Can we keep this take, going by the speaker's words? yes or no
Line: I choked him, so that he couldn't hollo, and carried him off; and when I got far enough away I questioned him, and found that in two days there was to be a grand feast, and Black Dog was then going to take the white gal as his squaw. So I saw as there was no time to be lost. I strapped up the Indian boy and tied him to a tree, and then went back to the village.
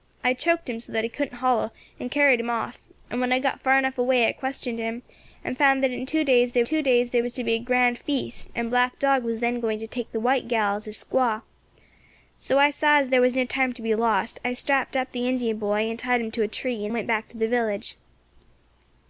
no